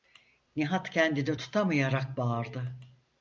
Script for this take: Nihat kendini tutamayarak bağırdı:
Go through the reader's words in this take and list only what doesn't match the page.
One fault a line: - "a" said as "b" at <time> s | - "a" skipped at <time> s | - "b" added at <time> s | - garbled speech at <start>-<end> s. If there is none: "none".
none